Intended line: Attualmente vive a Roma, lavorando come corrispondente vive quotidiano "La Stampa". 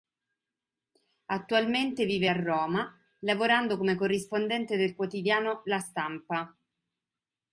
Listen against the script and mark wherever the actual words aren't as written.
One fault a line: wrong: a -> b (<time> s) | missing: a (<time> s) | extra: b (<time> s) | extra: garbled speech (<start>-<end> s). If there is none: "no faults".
wrong: vive -> del (4.8 s)